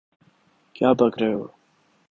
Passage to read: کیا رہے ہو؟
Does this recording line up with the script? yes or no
no